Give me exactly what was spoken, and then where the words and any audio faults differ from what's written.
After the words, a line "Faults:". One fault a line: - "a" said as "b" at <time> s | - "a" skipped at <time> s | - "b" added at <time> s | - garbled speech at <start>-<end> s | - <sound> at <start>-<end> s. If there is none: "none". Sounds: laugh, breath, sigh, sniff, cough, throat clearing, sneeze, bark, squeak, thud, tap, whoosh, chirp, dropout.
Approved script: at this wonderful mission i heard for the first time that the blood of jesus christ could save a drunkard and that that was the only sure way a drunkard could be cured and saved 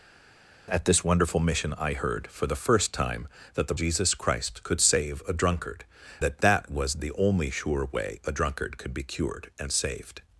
at this wonderful mission i heard for the first time that the jesus christ could save a drunkard that that was the only sure way a drunkard could be cured and saved
Faults:
- "blood of" skipped at 3.7 s
- "and" skipped at 5.8 s